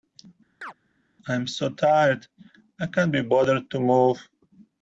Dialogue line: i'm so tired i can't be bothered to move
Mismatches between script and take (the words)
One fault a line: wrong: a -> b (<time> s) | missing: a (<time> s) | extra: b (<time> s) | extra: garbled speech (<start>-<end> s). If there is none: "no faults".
no faults